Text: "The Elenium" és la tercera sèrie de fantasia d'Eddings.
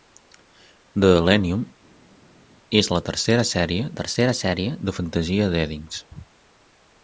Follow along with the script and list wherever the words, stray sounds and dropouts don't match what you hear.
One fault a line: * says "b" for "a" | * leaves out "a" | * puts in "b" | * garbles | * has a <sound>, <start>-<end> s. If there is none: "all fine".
* puts in "tercera sèrie"